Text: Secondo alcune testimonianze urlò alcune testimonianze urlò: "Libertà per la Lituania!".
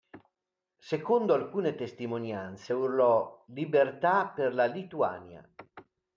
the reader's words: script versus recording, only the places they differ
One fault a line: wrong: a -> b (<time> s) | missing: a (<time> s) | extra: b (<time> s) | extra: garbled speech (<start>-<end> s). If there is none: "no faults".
missing: alcune testimonianze urlò (3.4 s)